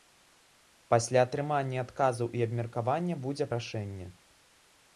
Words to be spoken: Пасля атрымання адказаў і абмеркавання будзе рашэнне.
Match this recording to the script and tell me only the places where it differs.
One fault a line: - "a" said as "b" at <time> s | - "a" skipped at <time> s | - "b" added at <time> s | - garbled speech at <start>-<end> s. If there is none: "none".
none